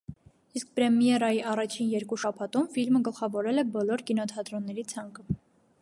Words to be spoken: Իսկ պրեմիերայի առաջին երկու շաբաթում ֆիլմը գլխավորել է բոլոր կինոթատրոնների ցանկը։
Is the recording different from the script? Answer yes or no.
no